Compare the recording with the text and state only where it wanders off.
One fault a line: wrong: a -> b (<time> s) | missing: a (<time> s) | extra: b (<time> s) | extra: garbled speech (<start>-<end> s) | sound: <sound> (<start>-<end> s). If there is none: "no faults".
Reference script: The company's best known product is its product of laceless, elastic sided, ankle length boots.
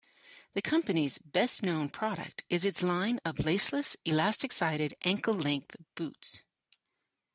wrong: product -> line (2.8 s)